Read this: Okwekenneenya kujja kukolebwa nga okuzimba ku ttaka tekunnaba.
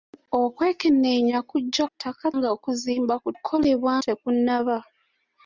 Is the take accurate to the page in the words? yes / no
no